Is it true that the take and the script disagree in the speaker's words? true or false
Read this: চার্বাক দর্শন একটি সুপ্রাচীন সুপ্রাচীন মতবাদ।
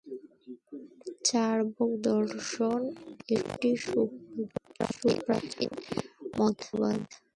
true